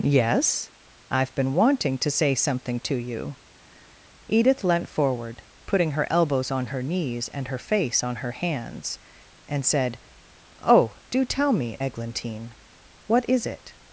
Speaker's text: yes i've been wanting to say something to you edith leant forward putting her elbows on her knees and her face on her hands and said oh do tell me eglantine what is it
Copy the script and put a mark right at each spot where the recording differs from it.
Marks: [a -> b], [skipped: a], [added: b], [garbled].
yes i've been wanting to say something to you edith leant forward putting her elbows on her knees and her face on her hands and said oh do tell me eglantine what is it